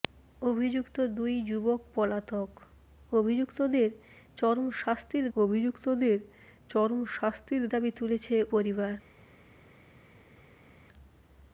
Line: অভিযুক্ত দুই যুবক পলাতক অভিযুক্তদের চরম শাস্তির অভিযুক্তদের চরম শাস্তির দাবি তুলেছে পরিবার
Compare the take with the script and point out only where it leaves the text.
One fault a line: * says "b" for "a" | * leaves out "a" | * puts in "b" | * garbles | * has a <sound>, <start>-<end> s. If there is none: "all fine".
all fine